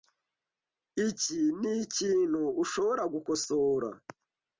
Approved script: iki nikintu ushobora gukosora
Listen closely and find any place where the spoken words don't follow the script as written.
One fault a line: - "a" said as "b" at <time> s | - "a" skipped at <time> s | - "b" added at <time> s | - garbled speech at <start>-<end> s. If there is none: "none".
none